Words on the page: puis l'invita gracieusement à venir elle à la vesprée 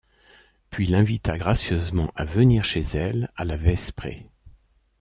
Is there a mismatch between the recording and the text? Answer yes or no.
yes